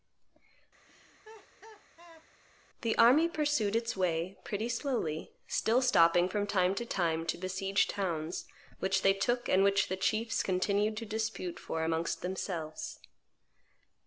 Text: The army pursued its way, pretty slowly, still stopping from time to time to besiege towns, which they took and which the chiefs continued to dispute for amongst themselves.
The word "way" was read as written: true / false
true